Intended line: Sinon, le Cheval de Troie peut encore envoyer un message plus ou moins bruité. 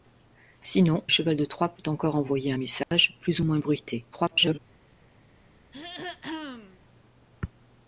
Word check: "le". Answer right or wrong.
wrong